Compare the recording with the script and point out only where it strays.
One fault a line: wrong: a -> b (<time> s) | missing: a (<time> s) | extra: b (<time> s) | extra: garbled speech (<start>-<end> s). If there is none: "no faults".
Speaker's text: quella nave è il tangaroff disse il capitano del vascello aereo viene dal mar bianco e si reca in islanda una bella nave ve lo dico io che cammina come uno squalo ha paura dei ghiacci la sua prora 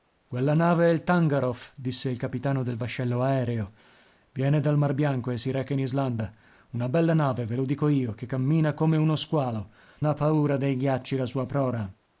no faults